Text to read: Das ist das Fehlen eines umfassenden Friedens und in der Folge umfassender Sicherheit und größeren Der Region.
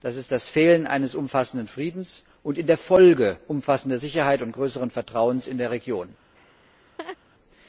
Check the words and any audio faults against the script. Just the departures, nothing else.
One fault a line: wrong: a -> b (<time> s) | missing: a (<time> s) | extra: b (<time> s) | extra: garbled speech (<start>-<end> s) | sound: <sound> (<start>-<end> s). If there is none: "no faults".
extra: Vertrauens in (4.9 s)
sound: laugh (6.4-7.2 s)